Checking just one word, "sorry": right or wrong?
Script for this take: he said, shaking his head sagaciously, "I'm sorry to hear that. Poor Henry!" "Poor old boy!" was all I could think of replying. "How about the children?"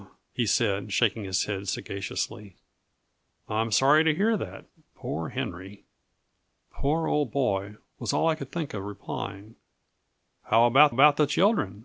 right